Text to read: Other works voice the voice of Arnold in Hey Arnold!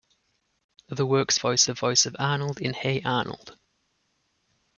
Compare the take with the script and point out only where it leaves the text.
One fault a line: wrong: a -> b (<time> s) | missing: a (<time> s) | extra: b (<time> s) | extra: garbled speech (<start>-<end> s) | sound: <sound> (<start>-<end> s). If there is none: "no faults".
no faults